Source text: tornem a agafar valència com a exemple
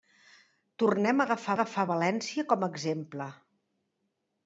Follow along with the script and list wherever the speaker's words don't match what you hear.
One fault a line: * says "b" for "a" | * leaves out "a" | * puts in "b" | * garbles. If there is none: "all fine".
* puts in "agafar"